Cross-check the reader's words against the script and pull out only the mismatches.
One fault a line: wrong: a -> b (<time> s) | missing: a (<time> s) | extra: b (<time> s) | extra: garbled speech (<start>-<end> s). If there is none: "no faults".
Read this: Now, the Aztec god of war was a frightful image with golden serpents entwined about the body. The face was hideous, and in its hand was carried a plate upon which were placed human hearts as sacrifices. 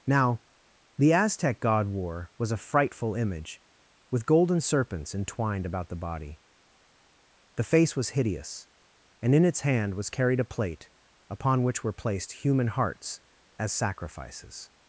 missing: of (1.9 s)